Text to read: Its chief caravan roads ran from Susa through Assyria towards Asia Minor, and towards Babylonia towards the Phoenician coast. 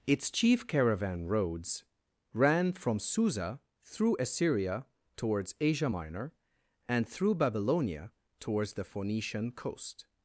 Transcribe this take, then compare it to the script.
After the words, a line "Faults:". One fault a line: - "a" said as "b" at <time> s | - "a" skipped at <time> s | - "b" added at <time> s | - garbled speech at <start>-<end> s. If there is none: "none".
Its chief caravan roads ran from Susa through Assyria towards Asia Minor, and through Babylonia towards the Phoenician coast.
Faults:
- "towards" said as "through" at 7.1 s